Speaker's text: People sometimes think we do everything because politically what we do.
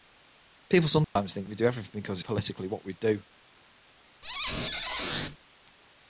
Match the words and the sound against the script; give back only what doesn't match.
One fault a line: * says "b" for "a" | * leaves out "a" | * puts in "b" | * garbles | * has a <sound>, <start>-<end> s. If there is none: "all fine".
* has a dropout, 1.0-1.2 s
* has a squeak, 4.2-5.4 s